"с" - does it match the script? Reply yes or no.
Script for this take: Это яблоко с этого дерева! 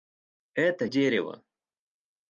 no